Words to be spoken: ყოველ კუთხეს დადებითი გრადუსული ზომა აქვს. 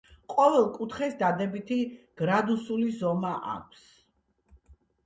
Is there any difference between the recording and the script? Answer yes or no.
no